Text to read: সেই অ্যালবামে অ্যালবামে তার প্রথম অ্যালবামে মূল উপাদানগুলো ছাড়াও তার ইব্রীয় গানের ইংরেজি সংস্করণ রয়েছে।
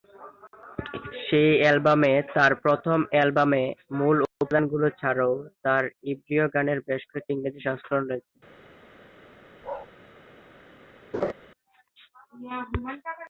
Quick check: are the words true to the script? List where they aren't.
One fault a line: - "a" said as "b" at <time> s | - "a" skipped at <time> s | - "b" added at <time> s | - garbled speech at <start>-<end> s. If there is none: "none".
- "অ্যালবামে" skipped at 2.1 s
- "বেশ কয়েকটি" added at 6.9 s